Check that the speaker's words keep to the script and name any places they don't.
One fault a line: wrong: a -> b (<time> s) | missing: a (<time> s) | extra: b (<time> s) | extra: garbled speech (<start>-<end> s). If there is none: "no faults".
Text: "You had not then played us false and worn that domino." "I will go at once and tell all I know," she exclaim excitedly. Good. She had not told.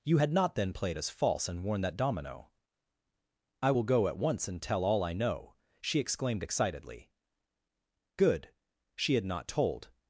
wrong: exclaim -> exclaimed (6.0 s)